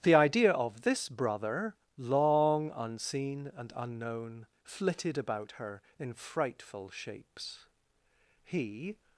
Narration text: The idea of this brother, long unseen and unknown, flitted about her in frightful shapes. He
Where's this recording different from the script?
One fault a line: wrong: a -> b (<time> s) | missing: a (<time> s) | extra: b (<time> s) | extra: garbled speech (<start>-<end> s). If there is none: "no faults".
no faults